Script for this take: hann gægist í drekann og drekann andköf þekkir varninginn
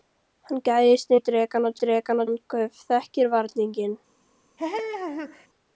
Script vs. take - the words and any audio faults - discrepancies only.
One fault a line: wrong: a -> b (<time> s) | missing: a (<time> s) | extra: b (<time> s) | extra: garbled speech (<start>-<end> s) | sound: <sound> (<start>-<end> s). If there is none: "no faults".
sound: laugh (4.6-5.5 s)